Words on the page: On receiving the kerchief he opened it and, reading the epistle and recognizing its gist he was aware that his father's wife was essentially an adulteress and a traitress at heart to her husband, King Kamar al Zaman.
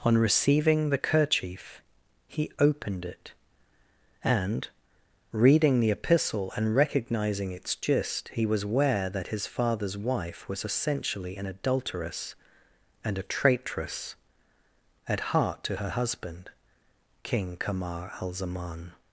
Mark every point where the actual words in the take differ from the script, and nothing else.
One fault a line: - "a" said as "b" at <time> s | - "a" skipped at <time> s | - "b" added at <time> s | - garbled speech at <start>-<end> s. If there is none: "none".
none